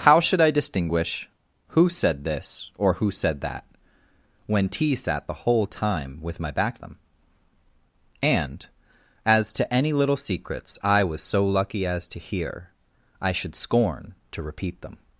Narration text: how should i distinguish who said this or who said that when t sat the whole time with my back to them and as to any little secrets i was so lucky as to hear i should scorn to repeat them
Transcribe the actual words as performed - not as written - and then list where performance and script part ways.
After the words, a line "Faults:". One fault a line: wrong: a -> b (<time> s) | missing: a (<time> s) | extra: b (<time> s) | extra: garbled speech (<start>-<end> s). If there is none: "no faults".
how should i distinguish who said this or who said that when t sat the whole time with my back them and as to any little secrets i was so lucky as to hear i should scorn to repeat them
Faults:
missing: to (6.8 s)